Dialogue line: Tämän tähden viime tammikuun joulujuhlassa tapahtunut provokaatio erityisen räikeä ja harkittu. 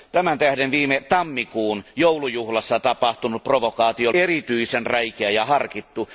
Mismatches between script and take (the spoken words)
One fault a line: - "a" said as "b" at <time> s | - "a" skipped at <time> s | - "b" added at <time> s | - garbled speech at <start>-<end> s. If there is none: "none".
none